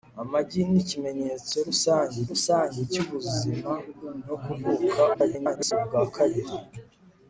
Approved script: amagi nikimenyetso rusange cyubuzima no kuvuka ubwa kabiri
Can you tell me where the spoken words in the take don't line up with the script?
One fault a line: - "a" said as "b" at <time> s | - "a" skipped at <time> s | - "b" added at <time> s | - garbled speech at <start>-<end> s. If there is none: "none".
- "rusange" added at 2.3 s
- garbled speech at 5.1-5.7 s